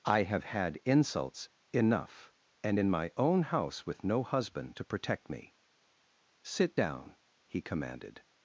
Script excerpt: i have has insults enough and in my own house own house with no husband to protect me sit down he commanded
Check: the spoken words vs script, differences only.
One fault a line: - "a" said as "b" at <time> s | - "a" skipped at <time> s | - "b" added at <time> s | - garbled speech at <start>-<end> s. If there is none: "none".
- "has" said as "had" at 0.5 s
- "own house" skipped at 3.8 s